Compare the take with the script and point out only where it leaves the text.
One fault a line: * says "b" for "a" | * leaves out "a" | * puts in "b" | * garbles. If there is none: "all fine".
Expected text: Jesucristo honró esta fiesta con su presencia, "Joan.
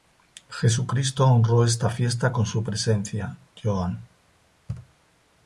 all fine